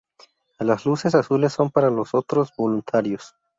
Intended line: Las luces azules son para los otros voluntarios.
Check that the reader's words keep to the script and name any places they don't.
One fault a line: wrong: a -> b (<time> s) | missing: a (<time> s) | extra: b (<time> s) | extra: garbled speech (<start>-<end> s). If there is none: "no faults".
no faults